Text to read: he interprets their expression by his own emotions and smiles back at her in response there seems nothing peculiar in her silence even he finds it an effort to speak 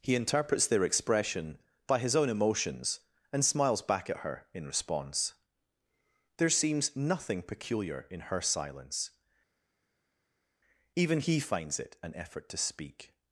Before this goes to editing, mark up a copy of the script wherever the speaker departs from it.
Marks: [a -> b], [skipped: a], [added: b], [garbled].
he interprets their expression by his own emotions and smiles back at her in response there seems nothing peculiar in her silence even he finds it an effort to speak